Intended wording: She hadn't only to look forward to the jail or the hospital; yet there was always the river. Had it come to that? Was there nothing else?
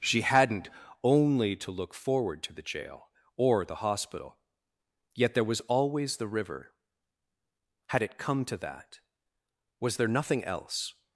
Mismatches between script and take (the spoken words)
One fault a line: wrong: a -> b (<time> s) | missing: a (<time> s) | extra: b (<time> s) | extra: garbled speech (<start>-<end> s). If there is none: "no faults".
no faults